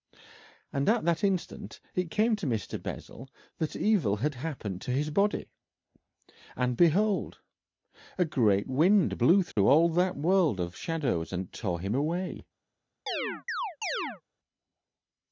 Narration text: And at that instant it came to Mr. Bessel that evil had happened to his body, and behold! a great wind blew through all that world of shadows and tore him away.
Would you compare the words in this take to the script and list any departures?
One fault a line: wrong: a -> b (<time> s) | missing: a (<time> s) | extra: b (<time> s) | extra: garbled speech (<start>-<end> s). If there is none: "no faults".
no faults